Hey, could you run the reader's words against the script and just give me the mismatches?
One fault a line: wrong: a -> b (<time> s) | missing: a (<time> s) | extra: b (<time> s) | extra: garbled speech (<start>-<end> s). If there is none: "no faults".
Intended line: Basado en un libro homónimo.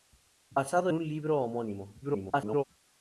missing: en (0.9 s)
extra: garbled speech (2.0-2.6 s)